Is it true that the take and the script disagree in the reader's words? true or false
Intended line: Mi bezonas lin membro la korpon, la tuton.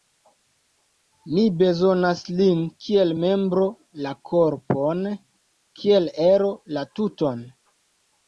true